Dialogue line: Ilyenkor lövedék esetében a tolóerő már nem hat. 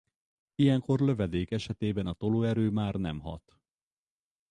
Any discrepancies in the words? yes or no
no